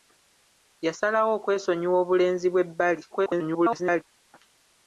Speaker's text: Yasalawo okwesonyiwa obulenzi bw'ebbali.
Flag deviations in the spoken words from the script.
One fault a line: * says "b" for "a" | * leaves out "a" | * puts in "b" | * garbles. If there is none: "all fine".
* garbles